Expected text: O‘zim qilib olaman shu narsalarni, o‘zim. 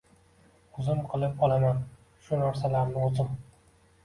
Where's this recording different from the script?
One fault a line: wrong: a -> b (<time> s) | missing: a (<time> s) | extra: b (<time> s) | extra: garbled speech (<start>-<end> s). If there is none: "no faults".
no faults